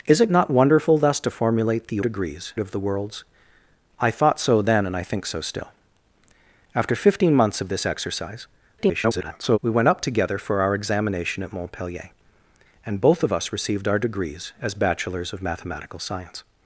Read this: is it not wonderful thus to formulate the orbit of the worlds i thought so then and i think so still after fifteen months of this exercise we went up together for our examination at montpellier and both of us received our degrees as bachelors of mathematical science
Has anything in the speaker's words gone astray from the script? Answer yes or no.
yes